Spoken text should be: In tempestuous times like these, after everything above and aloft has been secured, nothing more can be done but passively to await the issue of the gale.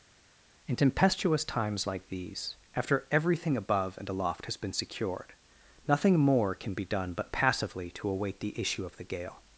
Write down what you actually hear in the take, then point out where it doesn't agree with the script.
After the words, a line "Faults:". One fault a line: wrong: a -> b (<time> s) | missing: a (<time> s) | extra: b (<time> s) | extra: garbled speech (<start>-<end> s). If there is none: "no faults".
In tempestuous times like these, after everything above and aloft has been secured, nothing more can be done but passively to await the issue of the gale.
Faults:
no faults